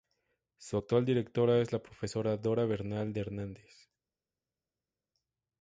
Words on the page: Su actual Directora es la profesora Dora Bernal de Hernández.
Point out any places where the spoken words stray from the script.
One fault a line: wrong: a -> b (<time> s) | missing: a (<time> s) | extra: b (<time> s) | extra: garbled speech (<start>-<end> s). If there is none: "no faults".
no faults